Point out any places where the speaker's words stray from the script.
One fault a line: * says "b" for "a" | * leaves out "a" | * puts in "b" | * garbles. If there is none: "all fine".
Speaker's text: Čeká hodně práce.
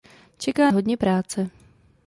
all fine